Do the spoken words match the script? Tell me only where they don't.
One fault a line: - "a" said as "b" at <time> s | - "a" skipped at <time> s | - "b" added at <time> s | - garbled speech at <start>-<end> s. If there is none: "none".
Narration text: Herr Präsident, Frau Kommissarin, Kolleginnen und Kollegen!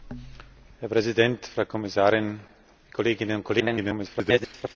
- garbled speech at 3.6-4.8 s